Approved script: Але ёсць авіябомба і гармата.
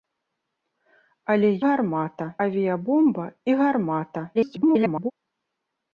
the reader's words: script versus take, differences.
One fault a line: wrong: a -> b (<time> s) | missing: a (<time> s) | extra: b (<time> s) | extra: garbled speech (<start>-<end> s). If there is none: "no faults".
wrong: ёсць -> гармата (1.7 s)
extra: garbled speech (4.3-5.1 s)